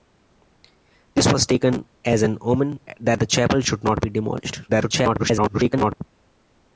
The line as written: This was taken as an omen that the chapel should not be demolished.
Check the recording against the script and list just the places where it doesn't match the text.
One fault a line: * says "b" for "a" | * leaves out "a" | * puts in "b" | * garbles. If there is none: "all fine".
* garbles